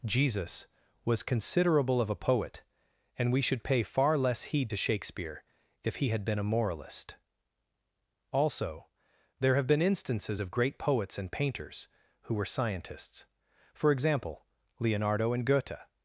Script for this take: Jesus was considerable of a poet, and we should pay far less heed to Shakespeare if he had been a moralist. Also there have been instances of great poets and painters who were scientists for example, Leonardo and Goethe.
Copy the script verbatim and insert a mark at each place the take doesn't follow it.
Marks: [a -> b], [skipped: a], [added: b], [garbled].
Jesus was considerable of a poet, and we should pay far less heed to Shakespeare if he had been a moralist. Also there have been instances of great poets and painters who were scientists for example, Leonardo and Goethe.